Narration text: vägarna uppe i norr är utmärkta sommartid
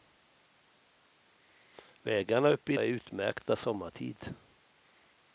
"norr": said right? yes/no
no